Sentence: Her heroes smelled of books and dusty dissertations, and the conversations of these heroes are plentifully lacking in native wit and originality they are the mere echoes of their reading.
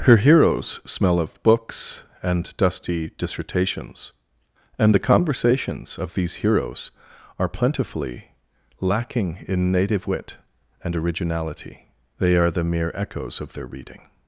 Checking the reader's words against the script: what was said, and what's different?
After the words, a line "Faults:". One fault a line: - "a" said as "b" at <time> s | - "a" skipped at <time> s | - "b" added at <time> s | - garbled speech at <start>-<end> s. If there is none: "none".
Her heroes smell of books and dusty dissertations, and the conversations of these heroes are plentifully lacking in native wit and originality they are the mere echoes of their reading.
Faults:
- "smelled" said as "smell" at 0.8 s